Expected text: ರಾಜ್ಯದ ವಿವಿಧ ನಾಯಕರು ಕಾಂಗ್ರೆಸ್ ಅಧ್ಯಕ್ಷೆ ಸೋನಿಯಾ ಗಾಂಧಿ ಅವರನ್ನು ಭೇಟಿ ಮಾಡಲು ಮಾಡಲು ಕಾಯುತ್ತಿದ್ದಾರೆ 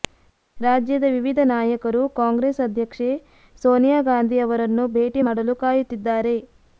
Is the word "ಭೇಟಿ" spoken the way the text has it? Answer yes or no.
yes